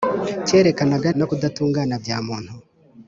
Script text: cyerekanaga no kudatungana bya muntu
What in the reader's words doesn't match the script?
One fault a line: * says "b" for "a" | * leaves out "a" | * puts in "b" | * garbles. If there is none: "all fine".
all fine